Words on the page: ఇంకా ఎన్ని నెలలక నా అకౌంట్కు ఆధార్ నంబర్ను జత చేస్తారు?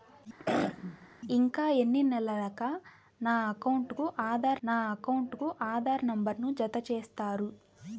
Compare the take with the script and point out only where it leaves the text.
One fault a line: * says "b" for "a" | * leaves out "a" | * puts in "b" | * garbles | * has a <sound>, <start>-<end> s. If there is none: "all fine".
* has a throat clearing, 0.4-1.1 s
* puts in "నా అకౌంట్కు ఆధార్"